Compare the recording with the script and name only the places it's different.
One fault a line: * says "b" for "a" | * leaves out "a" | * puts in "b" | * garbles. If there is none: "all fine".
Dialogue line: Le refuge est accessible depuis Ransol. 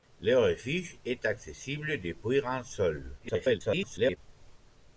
* garbles